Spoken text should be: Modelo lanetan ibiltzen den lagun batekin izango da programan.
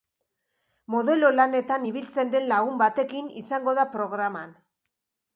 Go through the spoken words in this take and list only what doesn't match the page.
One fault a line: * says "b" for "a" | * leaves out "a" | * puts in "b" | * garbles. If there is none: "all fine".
all fine